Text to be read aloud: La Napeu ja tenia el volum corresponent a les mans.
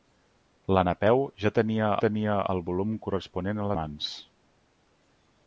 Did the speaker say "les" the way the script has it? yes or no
no